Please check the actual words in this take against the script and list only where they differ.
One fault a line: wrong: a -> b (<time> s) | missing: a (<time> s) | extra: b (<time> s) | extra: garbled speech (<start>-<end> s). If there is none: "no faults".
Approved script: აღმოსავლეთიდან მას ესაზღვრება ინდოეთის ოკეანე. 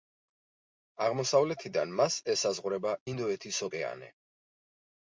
no faults